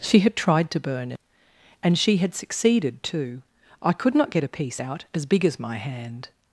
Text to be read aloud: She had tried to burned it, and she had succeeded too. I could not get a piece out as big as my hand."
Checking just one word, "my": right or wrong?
right